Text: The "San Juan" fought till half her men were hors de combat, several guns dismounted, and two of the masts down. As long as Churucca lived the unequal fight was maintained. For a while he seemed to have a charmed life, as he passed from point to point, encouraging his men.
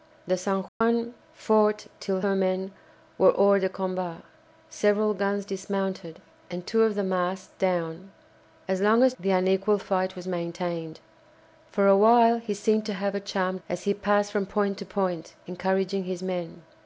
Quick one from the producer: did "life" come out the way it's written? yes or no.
no